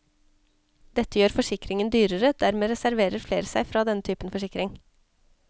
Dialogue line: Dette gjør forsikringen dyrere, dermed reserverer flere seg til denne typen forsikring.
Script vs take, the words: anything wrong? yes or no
yes